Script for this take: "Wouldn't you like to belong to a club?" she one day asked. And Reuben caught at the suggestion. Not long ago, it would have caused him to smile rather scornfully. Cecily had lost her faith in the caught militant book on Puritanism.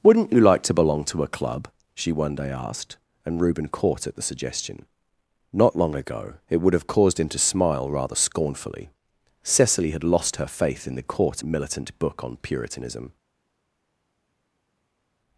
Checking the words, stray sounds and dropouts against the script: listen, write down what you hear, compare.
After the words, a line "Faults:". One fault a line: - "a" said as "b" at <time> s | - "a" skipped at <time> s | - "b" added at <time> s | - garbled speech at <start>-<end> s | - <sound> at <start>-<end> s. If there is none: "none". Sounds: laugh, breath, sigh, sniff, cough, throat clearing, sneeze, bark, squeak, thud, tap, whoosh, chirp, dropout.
"Wouldn't you like to belong to a club?" she one day asked. And Reuben caught at the suggestion. Not long ago, it would have caused him to smile rather scornfully. Cecily had lost her faith in the caught militant book on Puritanism.
Faults:
none